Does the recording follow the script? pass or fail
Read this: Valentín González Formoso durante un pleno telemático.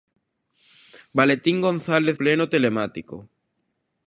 fail